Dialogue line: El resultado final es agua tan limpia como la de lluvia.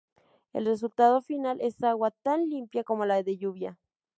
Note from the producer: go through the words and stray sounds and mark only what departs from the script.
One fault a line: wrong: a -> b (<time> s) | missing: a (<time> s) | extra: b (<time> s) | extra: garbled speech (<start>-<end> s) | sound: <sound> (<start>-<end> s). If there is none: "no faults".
no faults